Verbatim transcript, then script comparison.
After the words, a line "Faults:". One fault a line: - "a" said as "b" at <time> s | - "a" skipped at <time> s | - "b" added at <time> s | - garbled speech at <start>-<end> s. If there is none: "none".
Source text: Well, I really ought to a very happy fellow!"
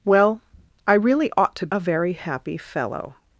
Well, I really ought to a very happy fellow!"
Faults:
none